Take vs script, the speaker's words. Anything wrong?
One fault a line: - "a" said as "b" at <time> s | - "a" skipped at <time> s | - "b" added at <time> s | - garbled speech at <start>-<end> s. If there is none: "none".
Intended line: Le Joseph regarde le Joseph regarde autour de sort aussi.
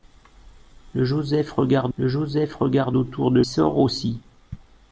none